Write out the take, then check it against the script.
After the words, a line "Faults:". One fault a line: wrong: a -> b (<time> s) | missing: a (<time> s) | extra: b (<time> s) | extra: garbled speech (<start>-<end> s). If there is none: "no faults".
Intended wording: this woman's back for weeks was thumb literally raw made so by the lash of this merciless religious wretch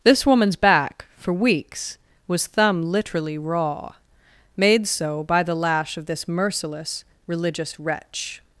this woman's back for weeks was thumb literally raw made so by the lash of this merciless religious wretch
Faults:
no faults